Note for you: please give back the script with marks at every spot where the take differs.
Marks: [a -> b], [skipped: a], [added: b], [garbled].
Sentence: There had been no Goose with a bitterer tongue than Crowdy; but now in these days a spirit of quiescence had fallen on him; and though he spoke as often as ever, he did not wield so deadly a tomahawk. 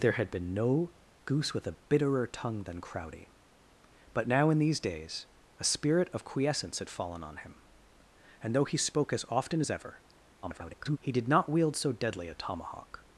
There had been no Goose with a bitterer tongue than Crowdy; but now in these days a spirit of quiescence had fallen on him; and though he spoke as often as ever, [garbled] he did not wield so deadly a tomahawk.